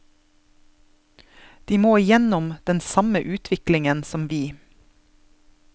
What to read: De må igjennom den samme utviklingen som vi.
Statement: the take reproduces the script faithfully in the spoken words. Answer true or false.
true